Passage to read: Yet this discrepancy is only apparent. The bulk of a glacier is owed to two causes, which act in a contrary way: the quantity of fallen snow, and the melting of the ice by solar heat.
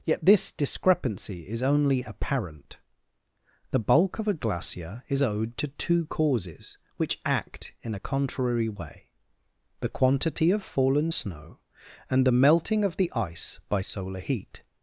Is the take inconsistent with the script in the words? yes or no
no